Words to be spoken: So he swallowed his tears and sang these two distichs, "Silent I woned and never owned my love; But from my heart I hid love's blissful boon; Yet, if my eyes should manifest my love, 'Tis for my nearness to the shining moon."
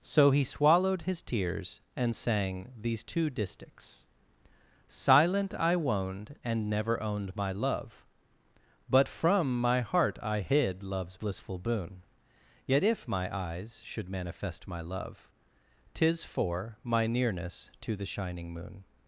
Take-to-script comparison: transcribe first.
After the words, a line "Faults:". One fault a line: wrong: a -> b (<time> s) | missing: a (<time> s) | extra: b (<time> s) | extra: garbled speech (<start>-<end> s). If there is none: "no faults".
So he swallowed his tears and sang these two distichs, "Silent I woned and never owned my love; But from my heart I hid love's blissful boon; Yet, if my eyes should manifest my love, 'Tis for my nearness to the shining moon."
Faults:
no faults